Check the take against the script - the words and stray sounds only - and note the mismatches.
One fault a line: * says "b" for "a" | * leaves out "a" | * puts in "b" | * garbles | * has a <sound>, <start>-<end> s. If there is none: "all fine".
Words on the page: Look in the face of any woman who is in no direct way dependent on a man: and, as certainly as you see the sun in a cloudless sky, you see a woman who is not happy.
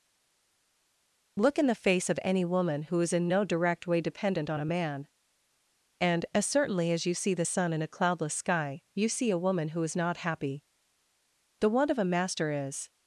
* puts in "The want of a master is"